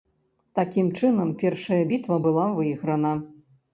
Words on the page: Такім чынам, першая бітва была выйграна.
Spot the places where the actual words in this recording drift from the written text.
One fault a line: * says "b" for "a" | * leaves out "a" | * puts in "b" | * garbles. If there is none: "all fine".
all fine